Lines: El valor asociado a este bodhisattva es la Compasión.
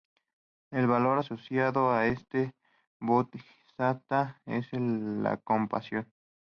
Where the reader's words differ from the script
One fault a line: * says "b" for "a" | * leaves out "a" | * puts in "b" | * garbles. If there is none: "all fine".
all fine